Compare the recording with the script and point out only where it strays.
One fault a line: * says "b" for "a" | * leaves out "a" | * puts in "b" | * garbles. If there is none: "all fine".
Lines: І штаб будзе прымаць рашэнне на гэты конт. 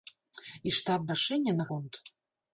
* leaves out "будзе прымаць"
* leaves out "гэты"